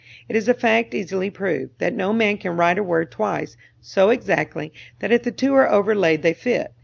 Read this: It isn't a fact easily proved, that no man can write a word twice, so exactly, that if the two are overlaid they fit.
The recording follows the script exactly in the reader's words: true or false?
false